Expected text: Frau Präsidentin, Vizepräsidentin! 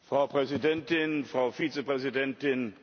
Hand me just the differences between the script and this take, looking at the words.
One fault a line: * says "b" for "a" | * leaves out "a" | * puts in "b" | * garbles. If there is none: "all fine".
* puts in "Frau"